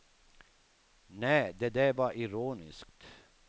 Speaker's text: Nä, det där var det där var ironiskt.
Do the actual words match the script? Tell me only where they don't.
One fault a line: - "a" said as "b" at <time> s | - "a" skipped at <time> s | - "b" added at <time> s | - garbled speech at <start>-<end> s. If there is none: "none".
- "det där var" skipped at 2.1 s